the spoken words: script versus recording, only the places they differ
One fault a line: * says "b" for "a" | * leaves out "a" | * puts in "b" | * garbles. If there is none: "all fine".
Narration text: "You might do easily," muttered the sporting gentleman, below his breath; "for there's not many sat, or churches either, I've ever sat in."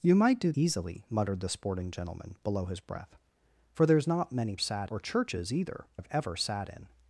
all fine